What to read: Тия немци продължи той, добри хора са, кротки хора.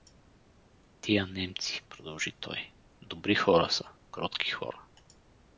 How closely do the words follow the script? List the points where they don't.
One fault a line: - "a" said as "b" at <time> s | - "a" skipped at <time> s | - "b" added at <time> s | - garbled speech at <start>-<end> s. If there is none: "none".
none